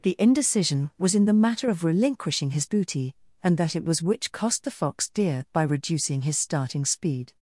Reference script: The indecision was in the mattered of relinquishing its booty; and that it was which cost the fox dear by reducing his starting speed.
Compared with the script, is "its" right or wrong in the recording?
wrong